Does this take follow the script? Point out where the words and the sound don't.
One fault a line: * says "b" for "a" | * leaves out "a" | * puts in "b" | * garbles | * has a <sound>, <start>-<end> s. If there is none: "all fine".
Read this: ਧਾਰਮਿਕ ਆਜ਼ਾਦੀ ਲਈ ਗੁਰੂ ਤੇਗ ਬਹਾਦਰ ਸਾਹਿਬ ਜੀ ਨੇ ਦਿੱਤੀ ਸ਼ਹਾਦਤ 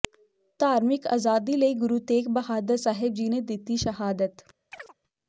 * has a chirp, 4.7-4.9 s